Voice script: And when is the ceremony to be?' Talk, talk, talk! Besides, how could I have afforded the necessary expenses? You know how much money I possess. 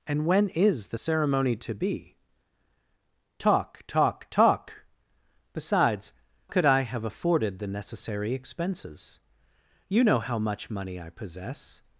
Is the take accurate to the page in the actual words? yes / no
no